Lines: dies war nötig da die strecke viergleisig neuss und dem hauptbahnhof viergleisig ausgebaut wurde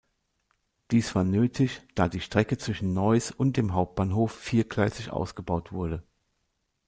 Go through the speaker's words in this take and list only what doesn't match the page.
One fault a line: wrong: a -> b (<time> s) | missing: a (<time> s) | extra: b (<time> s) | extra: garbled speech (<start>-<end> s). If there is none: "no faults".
wrong: viergleisig -> zwischen (2.6 s)